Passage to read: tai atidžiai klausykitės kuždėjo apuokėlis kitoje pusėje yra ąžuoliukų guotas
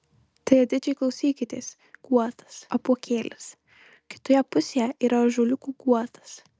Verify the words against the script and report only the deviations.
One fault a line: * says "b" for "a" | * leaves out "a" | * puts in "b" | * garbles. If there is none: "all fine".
* says "guotas" for "kuždėjo"